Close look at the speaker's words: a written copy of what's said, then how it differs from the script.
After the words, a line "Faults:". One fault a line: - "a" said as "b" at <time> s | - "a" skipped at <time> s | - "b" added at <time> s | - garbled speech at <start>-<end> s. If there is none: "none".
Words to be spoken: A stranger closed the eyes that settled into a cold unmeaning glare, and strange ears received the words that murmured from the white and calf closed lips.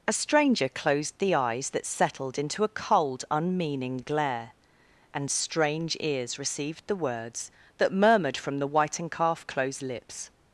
A stranger closed the eyes that settled into a cold unmeaning glare, and strange ears received the words that murmured from the white and calf closed lips.
Faults:
none